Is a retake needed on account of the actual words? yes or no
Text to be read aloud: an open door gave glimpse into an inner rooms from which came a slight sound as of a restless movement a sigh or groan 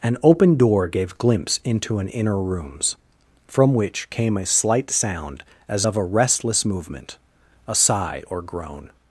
no